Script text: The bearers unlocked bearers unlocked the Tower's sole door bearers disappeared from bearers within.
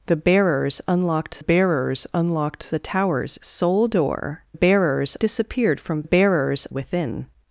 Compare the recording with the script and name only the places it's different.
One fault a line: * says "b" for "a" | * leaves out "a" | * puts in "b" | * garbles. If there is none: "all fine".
all fine